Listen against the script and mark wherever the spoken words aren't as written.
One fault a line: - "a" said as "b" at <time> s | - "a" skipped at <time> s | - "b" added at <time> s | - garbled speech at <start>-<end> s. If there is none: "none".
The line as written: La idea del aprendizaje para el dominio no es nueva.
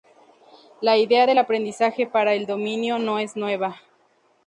none